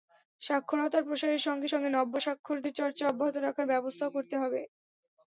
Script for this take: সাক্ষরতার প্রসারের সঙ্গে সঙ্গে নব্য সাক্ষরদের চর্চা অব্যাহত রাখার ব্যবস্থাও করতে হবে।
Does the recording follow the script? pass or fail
pass